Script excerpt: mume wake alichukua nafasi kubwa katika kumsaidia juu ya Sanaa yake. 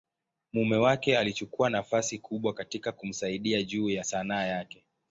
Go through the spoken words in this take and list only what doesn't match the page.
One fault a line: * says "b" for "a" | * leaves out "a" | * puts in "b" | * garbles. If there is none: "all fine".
all fine